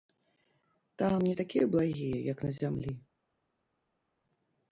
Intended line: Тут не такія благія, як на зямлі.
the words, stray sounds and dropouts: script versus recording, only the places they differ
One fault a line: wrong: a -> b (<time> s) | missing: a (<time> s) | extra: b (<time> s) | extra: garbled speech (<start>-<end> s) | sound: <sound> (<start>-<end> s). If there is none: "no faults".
wrong: Тут -> Там (0.9 s)